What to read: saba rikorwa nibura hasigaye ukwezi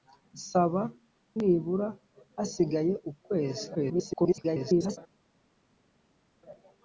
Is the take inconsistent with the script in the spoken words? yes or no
yes